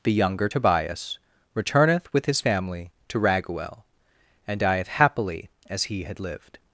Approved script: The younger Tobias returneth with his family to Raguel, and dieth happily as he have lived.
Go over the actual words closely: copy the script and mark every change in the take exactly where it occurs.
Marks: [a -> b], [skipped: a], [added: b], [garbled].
The younger Tobias returneth with his family to Raguel, and dieth happily as he [have -> had] lived.